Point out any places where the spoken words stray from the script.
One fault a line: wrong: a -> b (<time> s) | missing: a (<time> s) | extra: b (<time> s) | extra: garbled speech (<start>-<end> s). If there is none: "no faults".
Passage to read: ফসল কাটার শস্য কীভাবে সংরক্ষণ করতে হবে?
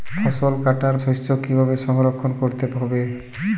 no faults